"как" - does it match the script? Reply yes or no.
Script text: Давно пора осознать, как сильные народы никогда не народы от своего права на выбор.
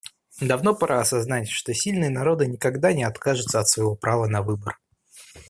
no